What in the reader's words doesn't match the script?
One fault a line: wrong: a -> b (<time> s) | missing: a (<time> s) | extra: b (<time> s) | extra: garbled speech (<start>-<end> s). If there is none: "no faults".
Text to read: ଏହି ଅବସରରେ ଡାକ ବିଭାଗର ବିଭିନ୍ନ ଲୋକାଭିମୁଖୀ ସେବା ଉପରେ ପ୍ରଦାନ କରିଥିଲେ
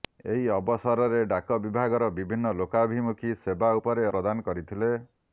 no faults